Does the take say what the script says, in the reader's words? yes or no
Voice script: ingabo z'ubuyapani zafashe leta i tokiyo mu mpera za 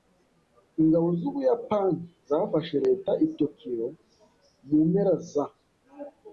yes